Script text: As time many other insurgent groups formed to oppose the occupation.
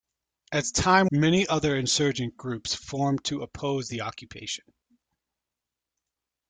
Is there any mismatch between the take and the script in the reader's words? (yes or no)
no